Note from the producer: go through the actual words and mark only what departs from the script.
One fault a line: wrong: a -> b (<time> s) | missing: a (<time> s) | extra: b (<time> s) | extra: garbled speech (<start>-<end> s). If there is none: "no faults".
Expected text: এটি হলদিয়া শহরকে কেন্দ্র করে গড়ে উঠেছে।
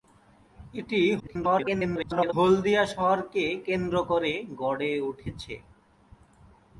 extra: garbled speech (1.2-2.3 s)